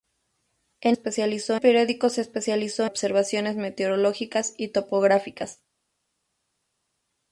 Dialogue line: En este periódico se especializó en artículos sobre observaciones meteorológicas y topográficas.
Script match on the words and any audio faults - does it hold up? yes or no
no